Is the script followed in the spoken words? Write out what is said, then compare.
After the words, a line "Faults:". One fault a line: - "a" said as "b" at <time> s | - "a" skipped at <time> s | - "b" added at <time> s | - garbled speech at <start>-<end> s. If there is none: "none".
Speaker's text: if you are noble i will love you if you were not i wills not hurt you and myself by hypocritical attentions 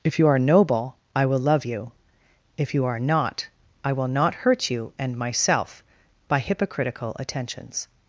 if you are noble i will love you if you are not i will not hurt you and myself by hypocritical attentions
Faults:
- "were" said as "are" at 2.9 s
- "wills" said as "will" at 3.9 s